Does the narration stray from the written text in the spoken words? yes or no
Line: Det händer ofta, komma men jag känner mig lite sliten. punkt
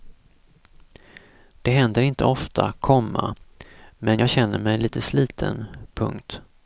yes